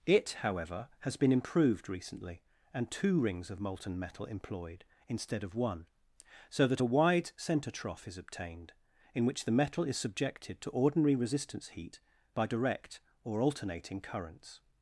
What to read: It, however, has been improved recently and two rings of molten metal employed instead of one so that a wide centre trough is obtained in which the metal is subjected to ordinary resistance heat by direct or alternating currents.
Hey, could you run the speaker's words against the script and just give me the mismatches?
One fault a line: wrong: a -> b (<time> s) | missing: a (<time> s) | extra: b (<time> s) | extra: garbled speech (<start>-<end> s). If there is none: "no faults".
no faults